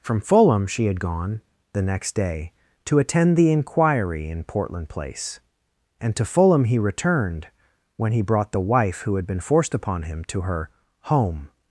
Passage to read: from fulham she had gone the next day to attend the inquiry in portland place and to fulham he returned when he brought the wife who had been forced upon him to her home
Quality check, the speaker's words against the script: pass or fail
pass